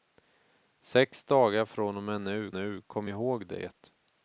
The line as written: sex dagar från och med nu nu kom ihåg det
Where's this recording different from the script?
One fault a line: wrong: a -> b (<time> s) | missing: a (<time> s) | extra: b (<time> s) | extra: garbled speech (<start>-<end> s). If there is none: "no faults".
no faults